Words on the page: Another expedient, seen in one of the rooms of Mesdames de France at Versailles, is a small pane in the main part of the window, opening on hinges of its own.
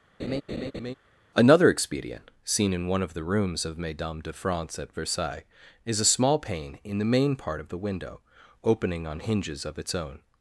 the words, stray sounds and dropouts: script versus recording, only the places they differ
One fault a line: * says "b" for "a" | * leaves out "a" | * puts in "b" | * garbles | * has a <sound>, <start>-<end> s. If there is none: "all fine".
* has a laugh, 0.2-0.9 s